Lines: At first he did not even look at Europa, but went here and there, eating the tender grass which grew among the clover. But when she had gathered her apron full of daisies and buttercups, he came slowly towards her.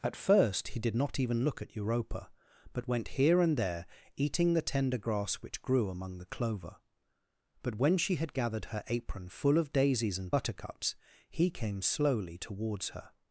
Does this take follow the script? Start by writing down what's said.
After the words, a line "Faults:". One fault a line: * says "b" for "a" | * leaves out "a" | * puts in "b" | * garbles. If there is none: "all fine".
At first he did not even look at Europa, but went here and there, eating the tender grass which grew among the clover. But when she had gathered her apron full of daisies and buttercups, he came slowly towards her.
Faults:
all fine